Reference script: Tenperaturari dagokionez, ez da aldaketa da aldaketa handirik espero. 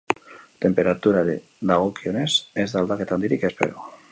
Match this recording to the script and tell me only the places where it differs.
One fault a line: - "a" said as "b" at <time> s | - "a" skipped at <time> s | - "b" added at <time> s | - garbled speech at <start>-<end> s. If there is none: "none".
- "da aldaketa" skipped at 3.2 s